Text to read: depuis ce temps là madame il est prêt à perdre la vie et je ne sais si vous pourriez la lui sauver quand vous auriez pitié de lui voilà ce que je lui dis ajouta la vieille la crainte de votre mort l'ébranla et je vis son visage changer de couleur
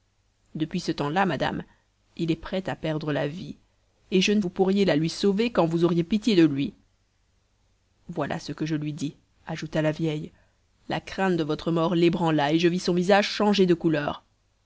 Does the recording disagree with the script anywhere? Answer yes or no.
yes